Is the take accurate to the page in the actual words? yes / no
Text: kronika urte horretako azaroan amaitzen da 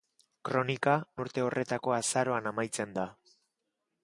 yes